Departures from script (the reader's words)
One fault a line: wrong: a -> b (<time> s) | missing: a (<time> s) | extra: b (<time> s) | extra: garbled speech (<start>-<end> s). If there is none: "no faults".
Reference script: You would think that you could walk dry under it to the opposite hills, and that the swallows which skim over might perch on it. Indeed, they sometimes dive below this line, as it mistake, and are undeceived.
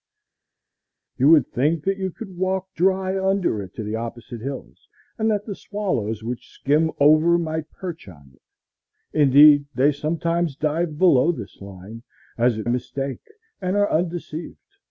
no faults